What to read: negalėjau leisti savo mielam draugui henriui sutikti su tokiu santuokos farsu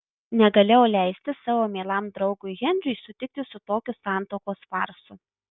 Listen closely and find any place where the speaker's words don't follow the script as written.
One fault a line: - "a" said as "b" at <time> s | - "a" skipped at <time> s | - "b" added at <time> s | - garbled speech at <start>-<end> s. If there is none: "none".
none